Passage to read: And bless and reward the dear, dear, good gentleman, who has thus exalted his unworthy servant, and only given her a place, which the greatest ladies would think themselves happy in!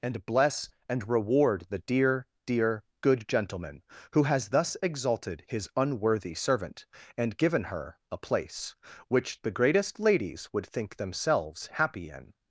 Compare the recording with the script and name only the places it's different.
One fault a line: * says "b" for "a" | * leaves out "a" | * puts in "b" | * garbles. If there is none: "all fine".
* leaves out "only"